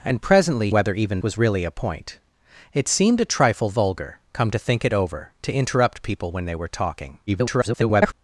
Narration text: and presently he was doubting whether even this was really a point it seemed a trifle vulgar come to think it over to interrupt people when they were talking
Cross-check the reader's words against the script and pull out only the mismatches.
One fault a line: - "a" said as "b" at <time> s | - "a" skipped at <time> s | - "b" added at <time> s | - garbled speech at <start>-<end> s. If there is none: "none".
- "he was doubting" skipped at 0.7 s
- "this" skipped at 1.2 s
- garbled speech at 7.3-8.1 s